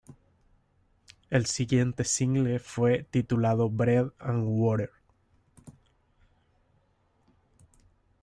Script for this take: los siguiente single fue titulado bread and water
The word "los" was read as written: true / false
false